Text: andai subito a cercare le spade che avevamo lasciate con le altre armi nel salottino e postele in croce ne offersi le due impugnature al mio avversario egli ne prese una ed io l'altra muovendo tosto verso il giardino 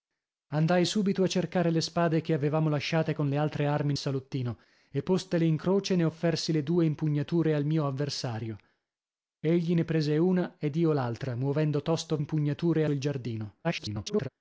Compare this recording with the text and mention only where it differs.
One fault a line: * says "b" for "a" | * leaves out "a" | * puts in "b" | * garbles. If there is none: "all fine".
* leaves out "nel"
* says "impugnature" for "verso"
* garbles